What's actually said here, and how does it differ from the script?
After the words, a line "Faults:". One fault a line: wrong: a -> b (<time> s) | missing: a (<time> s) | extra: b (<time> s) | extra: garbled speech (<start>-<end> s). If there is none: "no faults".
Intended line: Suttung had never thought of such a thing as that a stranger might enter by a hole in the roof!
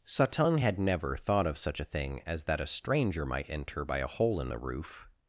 Suttung had never thought of such a thing as that a stranger might enter by a hole in the roof!
Faults:
no faults